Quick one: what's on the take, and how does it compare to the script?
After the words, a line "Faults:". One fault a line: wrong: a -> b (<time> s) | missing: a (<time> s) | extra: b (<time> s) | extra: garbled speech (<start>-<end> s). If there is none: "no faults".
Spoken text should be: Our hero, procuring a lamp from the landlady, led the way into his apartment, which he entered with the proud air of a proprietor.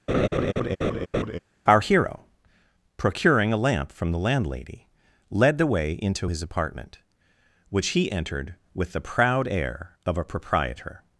Our hero, procuring a lamp from the landlady, led the way into his apartment, which he entered with the proud air of a proprietor.
Faults:
no faults